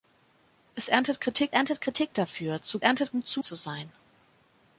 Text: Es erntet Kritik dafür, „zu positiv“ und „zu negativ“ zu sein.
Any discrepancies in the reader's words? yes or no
yes